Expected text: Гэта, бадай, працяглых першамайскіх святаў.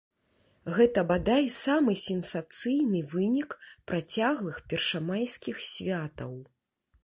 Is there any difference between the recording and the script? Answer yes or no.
yes